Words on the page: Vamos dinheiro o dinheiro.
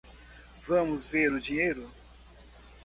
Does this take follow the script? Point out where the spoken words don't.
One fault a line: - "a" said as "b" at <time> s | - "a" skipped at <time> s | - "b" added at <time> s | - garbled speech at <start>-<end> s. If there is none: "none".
- "dinheiro" said as "ver" at 1.1 s